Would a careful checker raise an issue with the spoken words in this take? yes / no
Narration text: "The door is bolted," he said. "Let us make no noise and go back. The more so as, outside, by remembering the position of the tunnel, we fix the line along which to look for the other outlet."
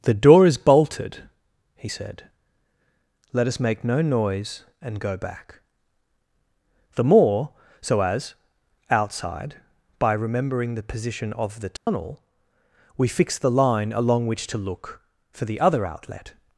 no